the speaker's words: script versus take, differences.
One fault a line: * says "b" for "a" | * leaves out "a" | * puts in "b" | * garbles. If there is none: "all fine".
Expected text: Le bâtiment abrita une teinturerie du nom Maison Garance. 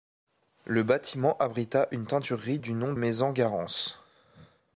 all fine